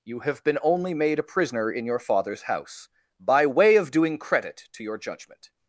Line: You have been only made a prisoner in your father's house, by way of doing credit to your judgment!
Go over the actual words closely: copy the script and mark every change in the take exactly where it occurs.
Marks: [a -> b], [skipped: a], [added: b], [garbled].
You have been only made a prisoner in your father's house, by way of doing credit to your judgment!